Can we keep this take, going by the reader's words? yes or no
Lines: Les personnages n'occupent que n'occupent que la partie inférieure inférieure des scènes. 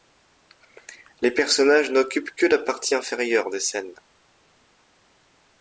no